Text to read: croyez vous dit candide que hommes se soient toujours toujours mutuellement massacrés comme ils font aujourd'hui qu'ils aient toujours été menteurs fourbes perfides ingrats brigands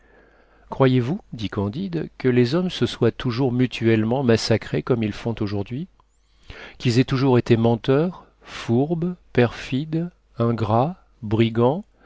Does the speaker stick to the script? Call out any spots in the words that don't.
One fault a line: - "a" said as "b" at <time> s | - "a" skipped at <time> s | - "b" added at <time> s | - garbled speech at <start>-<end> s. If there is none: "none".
- "les" added at 2.3 s
- "toujours" skipped at 3.5 s